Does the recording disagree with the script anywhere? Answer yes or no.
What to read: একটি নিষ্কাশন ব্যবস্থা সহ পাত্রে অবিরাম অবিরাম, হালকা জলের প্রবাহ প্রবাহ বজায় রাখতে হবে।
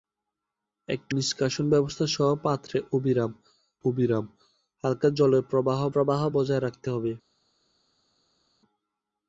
no